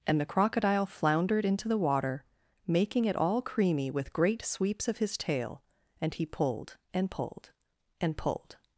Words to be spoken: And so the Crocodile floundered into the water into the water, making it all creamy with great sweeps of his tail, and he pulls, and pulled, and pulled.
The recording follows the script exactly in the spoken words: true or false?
false